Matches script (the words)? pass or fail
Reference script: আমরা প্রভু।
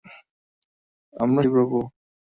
pass